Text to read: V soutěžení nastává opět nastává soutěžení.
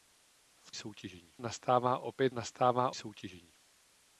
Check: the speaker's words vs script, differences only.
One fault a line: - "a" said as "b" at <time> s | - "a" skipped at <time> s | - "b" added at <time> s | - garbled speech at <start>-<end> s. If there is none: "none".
none